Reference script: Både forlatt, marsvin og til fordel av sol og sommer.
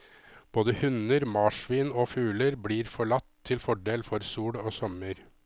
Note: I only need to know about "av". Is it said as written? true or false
false